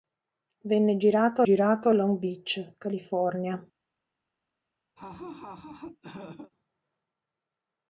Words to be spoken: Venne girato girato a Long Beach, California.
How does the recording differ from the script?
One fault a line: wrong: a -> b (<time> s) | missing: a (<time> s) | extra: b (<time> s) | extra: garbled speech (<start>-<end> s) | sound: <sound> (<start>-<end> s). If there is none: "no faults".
sound: laugh (5.0-6.5 s)